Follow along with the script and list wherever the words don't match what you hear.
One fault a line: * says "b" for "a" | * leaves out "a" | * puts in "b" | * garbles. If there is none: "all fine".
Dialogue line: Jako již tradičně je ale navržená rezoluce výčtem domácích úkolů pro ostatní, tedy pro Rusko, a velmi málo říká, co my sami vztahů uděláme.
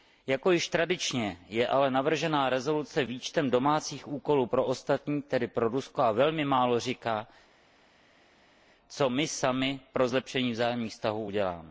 * puts in "pro zlepšení vzájemných"